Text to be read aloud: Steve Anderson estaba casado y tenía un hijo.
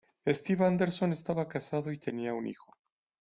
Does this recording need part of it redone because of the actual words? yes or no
no